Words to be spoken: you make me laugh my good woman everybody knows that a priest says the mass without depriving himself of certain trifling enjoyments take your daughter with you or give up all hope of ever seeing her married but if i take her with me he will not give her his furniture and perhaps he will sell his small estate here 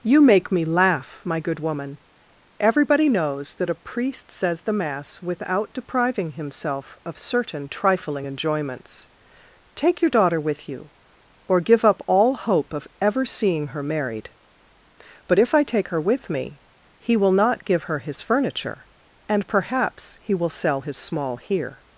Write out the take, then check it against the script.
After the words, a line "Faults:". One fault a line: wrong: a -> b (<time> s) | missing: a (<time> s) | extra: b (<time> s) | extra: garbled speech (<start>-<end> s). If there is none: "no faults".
you make me laugh my good woman everybody knows that a priest says the mass without depriving himself of certain trifling enjoyments take your daughter with you or give up all hope of ever seeing her married but if i take her with me he will not give her his furniture and perhaps he will sell his small here
Faults:
missing: estate (21.4 s)